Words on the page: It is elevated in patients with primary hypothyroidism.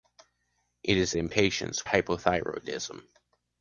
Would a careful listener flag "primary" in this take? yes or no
yes